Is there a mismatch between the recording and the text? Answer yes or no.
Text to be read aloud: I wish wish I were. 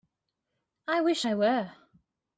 yes